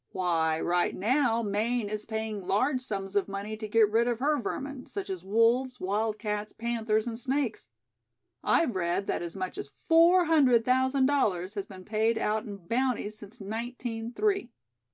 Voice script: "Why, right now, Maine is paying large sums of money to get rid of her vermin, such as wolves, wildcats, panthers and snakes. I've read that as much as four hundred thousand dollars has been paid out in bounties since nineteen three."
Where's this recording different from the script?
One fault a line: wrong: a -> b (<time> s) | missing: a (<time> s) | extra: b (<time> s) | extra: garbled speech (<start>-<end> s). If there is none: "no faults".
no faults